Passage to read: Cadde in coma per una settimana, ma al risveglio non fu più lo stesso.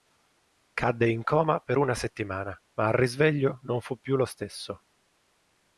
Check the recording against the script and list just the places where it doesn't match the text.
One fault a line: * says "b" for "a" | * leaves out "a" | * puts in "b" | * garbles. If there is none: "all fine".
all fine